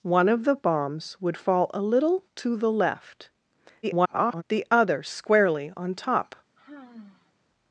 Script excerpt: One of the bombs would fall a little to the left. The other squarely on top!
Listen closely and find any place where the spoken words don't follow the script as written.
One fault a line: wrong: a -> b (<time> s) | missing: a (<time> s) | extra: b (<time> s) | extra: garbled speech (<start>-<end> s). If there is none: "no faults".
extra: garbled speech (3.8-4.4 s)